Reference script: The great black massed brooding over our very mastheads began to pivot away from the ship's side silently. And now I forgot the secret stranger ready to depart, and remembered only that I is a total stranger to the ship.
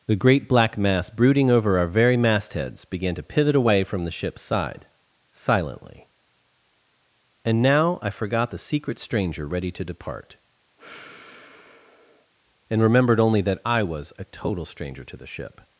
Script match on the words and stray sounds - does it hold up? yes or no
no